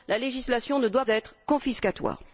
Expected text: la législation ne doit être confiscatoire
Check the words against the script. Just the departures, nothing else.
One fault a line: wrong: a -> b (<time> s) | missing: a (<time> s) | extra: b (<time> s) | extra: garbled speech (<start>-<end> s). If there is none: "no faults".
no faults